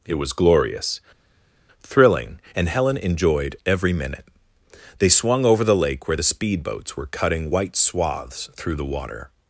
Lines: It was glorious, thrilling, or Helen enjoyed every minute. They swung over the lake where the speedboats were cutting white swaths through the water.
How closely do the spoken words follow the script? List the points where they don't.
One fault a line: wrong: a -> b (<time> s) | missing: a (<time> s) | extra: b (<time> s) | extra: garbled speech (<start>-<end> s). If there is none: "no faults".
wrong: or -> and (2.5 s)